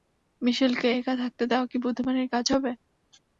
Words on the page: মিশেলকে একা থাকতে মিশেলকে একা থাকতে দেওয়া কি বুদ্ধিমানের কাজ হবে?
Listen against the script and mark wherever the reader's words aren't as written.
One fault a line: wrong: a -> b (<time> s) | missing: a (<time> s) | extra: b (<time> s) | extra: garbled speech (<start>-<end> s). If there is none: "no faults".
missing: মিশেলকে একা থাকতে (1.4 s)